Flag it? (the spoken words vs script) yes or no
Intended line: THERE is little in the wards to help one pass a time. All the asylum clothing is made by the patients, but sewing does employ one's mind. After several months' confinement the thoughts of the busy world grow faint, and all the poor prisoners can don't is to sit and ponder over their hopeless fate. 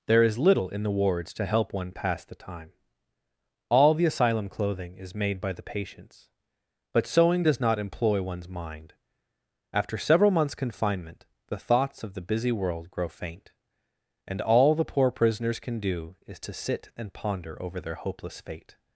yes